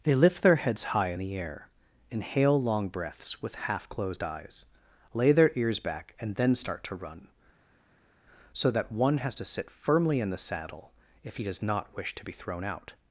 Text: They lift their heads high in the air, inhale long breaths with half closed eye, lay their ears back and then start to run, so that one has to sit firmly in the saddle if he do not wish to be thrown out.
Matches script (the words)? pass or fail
fail